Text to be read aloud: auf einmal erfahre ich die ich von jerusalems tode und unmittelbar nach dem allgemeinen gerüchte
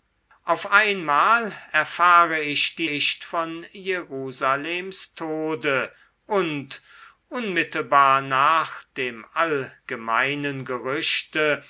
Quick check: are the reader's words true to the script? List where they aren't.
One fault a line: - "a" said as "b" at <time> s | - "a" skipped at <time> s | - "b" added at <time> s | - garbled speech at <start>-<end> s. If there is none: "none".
none